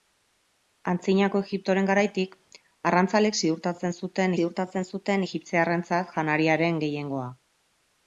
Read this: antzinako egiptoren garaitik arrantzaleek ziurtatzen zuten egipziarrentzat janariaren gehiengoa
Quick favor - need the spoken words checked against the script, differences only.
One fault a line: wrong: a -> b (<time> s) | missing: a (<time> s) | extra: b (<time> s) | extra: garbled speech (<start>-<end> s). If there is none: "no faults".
extra: ziurtatzen zuten (4.4 s)